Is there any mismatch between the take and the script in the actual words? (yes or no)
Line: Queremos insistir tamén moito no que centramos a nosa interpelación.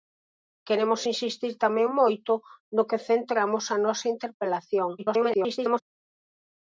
yes